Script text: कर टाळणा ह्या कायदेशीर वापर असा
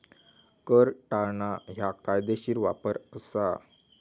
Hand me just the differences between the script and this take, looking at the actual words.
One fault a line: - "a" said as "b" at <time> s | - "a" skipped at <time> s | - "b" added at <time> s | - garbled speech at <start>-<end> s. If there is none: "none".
none